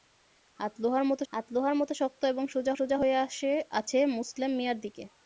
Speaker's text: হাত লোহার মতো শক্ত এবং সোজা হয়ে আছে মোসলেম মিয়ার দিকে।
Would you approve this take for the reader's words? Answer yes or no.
no